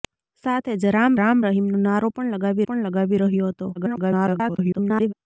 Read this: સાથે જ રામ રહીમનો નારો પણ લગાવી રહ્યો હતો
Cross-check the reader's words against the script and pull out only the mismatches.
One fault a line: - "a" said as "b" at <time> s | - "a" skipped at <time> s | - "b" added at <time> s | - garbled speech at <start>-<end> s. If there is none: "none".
- "રામ" added at 1.2 s
- "પણ લગાવી" added at 2.6 s
- garbled speech at 3.7-5.1 s